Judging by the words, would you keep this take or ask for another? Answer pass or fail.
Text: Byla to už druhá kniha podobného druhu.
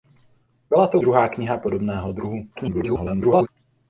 fail